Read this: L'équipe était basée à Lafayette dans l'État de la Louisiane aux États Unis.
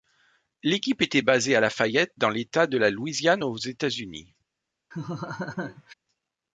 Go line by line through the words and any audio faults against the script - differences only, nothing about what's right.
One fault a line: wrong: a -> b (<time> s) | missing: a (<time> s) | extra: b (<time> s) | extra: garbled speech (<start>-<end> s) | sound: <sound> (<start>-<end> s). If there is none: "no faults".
sound: laugh (4.9-5.9 s)